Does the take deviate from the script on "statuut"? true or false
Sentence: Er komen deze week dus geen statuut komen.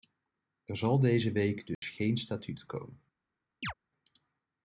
false